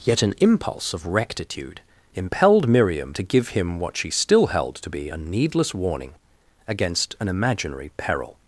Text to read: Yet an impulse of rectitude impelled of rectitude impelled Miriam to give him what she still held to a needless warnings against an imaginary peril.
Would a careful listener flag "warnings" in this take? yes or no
yes